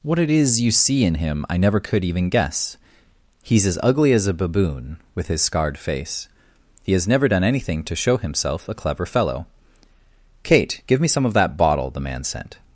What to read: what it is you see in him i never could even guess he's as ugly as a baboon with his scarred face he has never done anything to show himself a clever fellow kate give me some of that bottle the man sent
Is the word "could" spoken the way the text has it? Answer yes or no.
yes